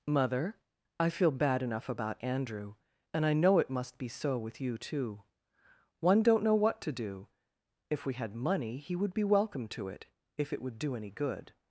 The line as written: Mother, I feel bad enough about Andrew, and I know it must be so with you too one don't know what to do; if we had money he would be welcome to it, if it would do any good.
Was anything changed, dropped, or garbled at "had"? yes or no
no